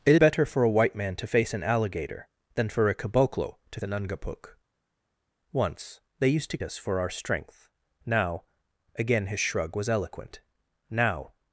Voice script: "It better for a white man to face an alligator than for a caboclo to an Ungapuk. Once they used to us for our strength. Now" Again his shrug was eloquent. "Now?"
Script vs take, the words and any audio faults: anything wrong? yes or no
no